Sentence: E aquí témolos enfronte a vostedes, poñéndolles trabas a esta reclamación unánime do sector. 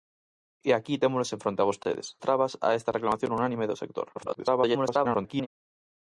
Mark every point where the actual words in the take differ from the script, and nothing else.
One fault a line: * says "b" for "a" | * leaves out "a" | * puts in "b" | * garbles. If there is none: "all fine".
* leaves out "poñéndolles"
* garbles